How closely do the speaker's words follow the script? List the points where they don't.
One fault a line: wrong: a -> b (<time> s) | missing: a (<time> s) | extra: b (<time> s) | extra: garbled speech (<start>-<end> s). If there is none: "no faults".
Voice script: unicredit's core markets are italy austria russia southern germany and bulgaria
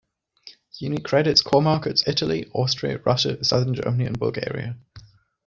missing: are (2.0 s)